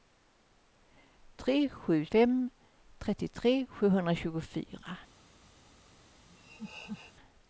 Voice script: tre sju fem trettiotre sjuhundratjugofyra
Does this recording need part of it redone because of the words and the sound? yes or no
yes